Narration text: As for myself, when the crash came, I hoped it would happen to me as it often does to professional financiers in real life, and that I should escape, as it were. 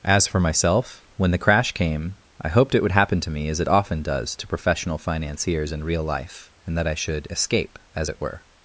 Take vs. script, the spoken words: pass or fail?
pass